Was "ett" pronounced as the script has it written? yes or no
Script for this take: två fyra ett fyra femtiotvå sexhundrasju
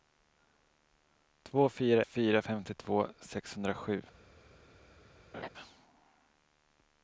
no